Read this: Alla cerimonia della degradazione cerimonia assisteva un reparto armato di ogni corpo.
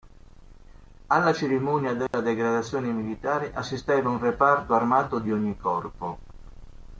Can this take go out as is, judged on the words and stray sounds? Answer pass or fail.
fail